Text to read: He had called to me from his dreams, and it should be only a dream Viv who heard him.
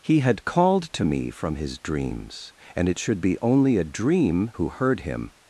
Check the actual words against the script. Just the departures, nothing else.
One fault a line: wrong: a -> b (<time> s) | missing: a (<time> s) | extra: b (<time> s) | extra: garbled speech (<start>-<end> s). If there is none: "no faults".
missing: Viv (4.5 s)